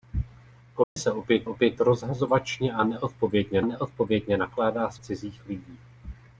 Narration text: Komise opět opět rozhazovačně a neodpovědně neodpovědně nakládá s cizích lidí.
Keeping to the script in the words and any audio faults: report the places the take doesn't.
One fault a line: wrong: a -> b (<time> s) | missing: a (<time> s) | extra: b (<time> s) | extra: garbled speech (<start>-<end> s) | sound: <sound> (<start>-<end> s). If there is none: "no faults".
sound: dropout (0.8-1.0 s)